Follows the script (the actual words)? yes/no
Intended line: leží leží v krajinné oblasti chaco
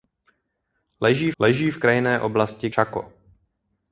yes